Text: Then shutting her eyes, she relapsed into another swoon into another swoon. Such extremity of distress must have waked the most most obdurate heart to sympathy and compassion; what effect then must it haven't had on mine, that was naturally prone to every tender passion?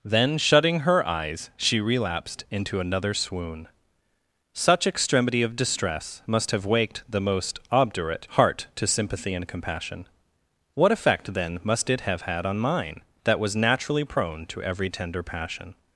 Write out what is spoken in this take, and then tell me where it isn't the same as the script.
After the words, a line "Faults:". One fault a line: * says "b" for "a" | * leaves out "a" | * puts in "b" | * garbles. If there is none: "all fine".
Then shutting her eyes, she relapsed into another swoon. Such extremity of distress must have waked the most obdurate heart to sympathy and compassion; what effect then must it have had on mine, that was naturally prone to every tender passion?
Faults:
* leaves out "into another swoon"
* leaves out "most"
* says "have" for "haven't"